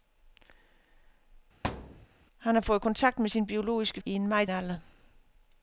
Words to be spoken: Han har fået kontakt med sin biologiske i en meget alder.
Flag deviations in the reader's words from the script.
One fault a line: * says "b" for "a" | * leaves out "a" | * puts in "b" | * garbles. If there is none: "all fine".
all fine